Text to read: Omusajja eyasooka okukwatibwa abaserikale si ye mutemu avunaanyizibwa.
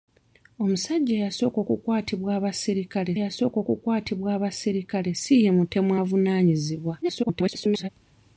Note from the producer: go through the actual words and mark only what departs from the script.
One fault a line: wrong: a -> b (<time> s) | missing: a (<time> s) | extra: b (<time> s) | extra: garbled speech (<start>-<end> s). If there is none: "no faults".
extra: eyasooka okukwatibwa abaserikale (3.2 s)
extra: garbled speech (7.0-7.9 s)